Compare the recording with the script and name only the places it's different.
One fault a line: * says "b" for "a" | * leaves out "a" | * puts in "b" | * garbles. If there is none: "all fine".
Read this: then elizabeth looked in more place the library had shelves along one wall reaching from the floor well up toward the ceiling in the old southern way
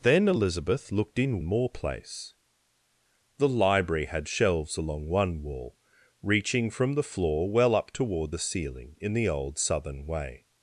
all fine